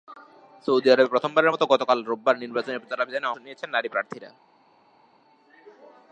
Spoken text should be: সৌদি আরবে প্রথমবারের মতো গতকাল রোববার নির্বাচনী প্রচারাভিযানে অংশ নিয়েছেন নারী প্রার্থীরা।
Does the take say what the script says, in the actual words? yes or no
no